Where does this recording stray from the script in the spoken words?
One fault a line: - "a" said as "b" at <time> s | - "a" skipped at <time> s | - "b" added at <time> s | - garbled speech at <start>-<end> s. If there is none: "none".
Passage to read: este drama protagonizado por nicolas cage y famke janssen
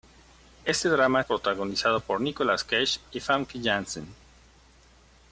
none